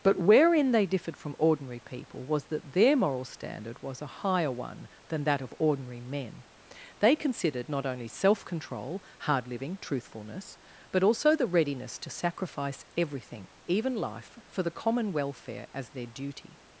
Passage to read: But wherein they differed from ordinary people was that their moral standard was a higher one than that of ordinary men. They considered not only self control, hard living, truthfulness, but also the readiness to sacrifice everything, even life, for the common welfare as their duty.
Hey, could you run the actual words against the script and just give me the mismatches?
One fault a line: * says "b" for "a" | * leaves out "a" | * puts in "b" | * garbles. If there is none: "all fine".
all fine